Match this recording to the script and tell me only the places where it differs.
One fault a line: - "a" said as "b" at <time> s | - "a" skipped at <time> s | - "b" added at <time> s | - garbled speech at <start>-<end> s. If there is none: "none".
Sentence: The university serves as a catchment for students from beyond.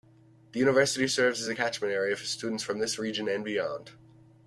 - "area" added at 1.9 s
- "this region and" added at 2.8 s